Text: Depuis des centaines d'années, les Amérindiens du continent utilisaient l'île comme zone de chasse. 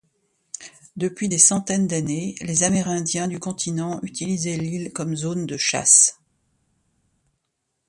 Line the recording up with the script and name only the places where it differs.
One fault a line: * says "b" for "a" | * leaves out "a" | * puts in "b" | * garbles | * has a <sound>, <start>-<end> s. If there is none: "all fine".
all fine